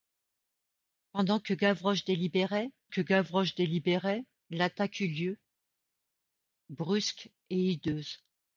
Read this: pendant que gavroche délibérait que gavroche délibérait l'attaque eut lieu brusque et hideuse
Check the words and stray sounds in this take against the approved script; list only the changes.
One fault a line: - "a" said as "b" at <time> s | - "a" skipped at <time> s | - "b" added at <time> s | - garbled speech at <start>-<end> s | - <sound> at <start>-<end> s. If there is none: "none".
none